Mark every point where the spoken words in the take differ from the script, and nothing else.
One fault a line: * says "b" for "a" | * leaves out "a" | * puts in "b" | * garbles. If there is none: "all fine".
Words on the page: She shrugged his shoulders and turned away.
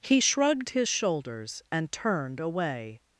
* says "He" for "She"